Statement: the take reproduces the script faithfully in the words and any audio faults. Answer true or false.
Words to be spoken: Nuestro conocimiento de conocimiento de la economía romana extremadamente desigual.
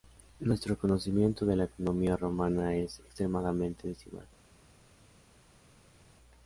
false